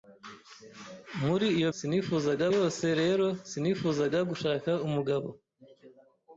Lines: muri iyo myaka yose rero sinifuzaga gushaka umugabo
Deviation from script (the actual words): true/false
true